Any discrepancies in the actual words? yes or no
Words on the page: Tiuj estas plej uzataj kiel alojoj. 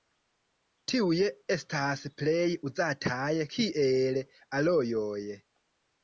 no